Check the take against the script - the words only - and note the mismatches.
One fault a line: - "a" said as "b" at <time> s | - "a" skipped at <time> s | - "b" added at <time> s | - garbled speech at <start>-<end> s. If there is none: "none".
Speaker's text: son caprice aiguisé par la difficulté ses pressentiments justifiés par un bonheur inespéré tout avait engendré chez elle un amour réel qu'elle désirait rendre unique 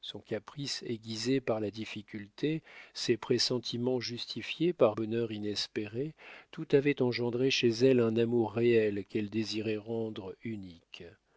- "un" skipped at 5.0 s